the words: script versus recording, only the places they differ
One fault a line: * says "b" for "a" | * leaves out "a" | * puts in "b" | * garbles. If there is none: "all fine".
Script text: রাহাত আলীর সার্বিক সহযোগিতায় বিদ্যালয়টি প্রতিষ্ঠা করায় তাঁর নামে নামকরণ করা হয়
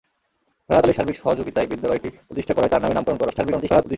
* garbles